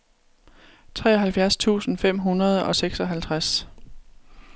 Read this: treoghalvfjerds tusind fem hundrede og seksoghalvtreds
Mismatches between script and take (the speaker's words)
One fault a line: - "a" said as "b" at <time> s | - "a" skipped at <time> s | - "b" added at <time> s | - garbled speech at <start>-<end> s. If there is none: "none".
none